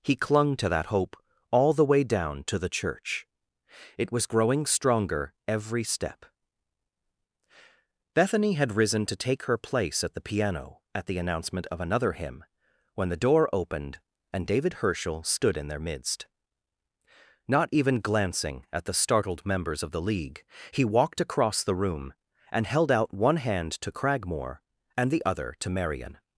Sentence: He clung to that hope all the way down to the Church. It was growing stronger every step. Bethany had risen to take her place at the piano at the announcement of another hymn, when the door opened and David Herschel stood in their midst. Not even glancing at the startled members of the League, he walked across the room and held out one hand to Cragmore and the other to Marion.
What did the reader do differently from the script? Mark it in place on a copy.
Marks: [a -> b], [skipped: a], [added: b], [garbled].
He clung to that hope all the way down to the Church. It was growing stronger every step. Bethany had risen to take her place at the piano at the announcement of another hymn, when the door opened and David Herschel stood in their midst. Not even glancing at the startled members of the League, he walked across the room and held out one hand to Cragmore and the other to Marion.